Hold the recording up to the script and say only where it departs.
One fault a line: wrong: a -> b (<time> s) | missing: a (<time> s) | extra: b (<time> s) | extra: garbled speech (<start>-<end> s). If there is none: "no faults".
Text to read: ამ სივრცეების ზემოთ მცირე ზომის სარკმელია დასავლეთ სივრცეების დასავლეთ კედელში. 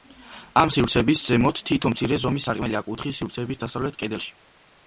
extra: თითო (1.7 s)
wrong: დასავლეთ -> კუთხის (2.9 s)